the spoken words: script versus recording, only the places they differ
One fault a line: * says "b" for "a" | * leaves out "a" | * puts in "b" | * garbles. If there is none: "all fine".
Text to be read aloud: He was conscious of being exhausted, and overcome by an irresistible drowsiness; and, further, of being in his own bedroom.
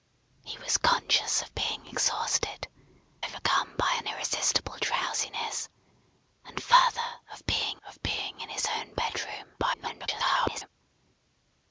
* leaves out "and"
* puts in "of being"
* garbles